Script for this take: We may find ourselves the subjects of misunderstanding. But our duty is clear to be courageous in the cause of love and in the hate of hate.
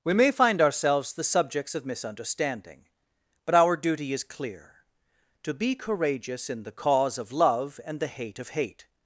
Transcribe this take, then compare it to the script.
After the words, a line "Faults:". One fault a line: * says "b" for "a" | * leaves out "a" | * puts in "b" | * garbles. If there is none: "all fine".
We may find ourselves the subjects of misunderstanding. But our duty is clear to be courageous in the cause of love and the hate of hate.
Faults:
* leaves out "in"